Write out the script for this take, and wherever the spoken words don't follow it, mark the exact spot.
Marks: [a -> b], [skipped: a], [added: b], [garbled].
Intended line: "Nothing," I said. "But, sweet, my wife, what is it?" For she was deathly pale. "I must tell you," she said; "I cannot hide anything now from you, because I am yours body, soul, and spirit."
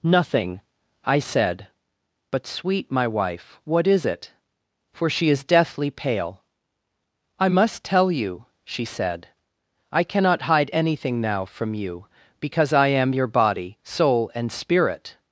"Nothing," I said. "But, sweet, my wife, what is it?" For she [was -> is] deathly pale. "I must tell you," she said; "I cannot hide anything now from you, because I am [yours -> your] body, soul, and spirit."